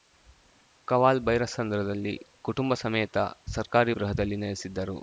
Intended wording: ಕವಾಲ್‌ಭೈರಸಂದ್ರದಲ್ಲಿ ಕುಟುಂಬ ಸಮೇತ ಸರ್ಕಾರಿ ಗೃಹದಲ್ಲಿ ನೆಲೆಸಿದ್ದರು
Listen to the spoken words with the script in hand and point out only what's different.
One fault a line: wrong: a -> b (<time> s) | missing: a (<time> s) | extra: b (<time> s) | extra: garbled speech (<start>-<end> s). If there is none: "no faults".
no faults